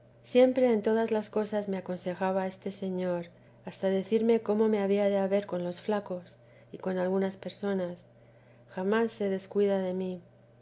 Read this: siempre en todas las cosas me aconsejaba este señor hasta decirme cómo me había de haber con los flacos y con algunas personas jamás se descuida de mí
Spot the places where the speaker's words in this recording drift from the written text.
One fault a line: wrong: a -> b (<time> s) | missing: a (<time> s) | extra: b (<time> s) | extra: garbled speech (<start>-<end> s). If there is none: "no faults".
no faults